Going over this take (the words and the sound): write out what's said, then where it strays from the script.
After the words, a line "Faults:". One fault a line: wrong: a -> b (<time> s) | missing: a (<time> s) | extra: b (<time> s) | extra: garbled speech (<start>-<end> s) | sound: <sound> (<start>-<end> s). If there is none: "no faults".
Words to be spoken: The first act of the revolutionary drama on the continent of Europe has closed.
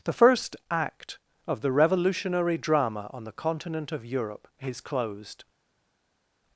The first act of the revolutionary drama on the continent of Europe is closed.
Faults:
wrong: has -> is (4.6 s)